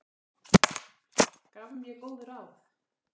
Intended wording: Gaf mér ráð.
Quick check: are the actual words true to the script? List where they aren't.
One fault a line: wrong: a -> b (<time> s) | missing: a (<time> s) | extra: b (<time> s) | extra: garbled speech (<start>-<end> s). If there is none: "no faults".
extra: góð (2.0 s)